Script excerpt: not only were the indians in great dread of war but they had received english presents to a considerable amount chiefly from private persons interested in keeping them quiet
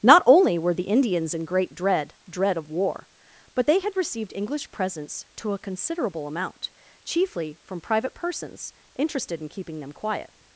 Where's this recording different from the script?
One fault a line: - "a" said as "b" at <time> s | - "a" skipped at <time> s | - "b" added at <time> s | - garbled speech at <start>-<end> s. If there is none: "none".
- "dread" added at 2.3 s